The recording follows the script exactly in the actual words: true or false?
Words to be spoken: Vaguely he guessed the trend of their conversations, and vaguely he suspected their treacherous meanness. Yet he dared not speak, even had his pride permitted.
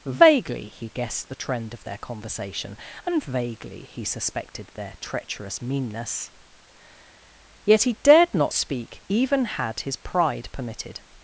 false